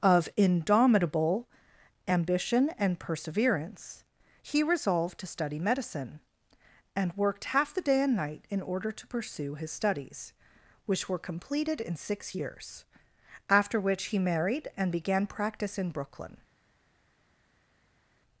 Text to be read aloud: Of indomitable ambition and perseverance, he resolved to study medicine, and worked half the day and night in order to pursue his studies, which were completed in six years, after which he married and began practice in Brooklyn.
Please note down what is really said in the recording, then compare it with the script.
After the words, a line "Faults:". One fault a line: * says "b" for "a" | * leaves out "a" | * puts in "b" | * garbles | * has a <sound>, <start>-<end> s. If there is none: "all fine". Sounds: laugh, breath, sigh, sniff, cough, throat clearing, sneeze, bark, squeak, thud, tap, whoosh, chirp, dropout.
Of indomitable ambition and perseverance, he resolved to study medicine, and worked half the day and night in order to pursue his studies, which were completed in six years, after which he married and began practice in Brooklyn.
Faults:
all fine